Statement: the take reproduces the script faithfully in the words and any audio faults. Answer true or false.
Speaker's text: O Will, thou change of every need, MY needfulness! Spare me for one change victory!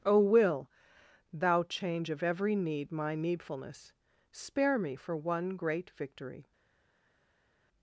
false